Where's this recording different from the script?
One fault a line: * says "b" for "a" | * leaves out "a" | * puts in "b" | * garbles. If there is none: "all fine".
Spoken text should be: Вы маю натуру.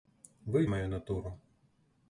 all fine